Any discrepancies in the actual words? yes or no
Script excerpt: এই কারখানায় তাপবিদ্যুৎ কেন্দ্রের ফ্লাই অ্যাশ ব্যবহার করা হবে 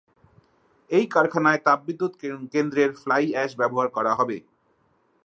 no